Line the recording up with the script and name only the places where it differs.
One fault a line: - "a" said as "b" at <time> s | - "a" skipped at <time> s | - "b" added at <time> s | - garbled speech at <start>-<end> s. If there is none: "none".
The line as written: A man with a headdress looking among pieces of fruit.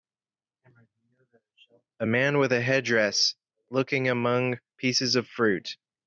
none